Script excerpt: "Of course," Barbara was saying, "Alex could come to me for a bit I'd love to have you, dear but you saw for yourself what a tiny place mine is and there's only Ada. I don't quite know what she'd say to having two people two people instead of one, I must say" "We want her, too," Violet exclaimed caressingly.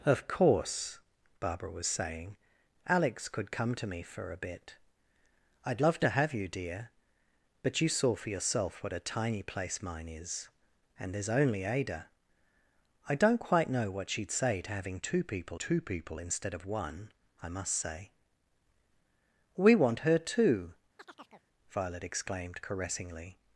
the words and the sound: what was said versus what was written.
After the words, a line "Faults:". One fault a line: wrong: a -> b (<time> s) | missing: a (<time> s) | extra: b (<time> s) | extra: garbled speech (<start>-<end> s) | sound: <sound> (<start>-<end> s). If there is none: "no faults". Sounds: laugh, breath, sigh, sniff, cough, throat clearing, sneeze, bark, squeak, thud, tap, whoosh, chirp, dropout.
"Of course," Barbara was saying, "Alex could come to me for a bit I'd love to have you, dear but you saw for yourself what a tiny place mine is and there's only Ada. I don't quite know what she'd say to having two people two people instead of one, I must say" "We want her, too," Violet exclaimed caressingly.
Faults:
sound: chirp (21.0-21.5 s)